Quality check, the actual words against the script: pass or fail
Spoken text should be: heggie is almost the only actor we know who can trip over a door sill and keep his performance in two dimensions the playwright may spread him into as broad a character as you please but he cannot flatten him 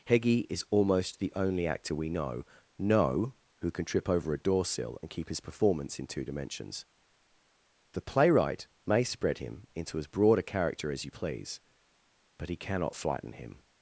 fail